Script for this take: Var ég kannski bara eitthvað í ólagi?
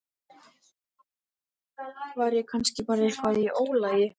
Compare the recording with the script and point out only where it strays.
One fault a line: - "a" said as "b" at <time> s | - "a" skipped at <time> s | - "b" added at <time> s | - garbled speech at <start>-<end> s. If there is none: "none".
none